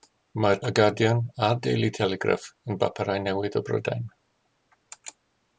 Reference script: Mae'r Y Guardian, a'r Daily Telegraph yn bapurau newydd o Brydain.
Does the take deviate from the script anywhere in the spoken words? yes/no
no